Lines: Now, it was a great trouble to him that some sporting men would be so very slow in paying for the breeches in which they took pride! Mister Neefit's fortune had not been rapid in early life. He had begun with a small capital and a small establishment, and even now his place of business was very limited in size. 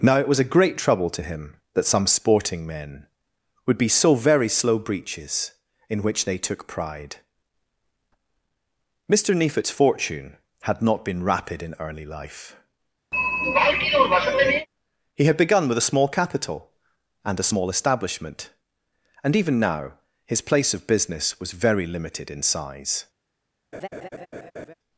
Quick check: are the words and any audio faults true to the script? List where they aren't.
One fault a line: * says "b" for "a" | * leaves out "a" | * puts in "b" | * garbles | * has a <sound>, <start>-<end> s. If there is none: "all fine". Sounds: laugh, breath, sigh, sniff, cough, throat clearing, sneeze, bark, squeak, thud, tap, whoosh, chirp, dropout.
* leaves out "in paying for the"
* has a throat clearing, 13.1-14.7 s
* has a laugh, 23.7-24.7 s